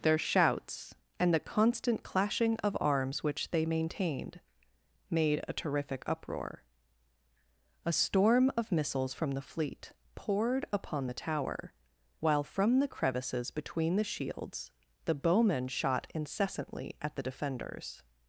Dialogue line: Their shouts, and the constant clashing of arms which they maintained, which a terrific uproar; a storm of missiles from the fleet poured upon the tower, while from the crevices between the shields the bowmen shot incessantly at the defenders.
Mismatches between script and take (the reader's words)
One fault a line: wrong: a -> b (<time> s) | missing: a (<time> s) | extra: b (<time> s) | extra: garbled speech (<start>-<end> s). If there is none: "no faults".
wrong: which -> made (5.1 s)